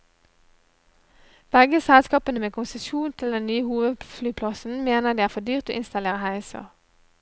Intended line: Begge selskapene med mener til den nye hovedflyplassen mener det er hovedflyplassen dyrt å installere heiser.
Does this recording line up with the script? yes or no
no